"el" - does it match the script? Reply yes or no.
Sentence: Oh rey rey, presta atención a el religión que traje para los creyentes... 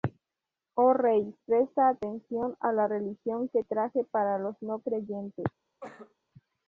no